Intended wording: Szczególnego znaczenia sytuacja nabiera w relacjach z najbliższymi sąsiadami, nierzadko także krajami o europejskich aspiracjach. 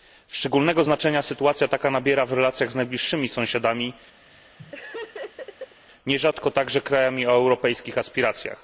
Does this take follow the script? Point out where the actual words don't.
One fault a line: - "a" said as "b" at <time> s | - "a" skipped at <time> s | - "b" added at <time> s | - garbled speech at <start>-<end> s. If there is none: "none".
- "taka" added at 1.7 s